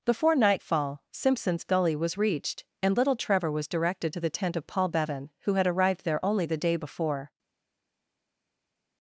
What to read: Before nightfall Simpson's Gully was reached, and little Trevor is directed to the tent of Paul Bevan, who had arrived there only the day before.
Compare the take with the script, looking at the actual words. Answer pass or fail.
fail